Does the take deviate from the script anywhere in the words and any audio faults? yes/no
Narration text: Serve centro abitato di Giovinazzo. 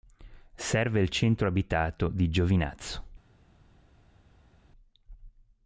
yes